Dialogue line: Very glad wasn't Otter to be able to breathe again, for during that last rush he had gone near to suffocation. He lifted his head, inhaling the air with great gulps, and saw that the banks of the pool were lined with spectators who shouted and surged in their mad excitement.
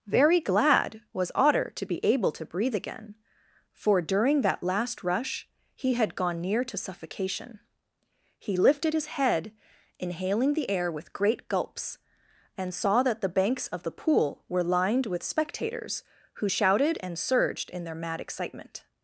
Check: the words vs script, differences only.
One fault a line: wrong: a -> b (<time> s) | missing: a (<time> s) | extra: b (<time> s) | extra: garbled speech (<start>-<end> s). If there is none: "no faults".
wrong: wasn't -> was (1.1 s)